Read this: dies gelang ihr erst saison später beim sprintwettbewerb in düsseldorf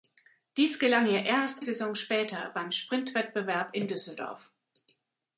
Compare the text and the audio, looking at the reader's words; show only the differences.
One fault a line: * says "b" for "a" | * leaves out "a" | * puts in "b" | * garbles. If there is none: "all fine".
all fine